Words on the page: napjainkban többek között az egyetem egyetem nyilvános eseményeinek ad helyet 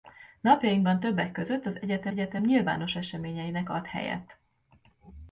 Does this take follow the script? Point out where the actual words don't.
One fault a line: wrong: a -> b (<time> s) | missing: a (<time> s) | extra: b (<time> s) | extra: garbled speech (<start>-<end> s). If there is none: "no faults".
no faults